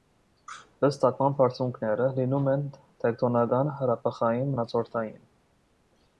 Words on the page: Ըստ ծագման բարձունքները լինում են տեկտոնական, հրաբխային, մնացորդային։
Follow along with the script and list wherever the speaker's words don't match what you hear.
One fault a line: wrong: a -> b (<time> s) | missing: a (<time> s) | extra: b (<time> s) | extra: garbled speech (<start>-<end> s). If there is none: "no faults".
no faults